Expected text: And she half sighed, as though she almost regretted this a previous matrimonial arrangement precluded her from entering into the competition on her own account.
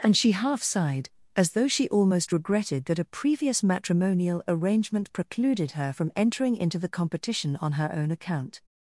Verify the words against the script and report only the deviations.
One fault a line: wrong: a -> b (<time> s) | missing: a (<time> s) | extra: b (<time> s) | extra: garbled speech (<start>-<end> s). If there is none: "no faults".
wrong: this -> that (2.8 s)